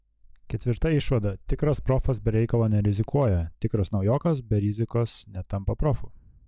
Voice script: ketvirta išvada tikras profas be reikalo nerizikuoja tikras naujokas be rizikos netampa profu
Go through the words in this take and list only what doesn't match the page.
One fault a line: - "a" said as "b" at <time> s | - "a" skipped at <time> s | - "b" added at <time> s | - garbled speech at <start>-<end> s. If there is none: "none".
none